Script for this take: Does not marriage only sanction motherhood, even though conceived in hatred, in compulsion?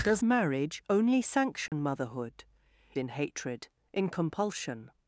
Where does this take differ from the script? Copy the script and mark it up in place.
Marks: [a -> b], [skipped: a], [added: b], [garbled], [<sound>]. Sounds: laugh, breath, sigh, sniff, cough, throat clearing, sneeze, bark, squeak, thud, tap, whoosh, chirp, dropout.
Does [skipped: not] marriage only sanction [dropout] motherhood, [skipped: even though conceived] in hatred, in compulsion?